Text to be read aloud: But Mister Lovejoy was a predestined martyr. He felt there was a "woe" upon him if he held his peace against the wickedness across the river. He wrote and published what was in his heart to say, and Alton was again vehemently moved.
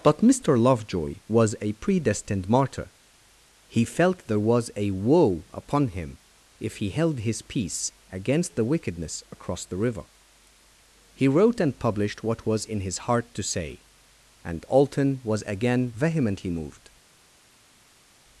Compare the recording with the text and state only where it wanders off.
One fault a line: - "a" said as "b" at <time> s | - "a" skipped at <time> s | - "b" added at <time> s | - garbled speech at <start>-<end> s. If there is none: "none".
none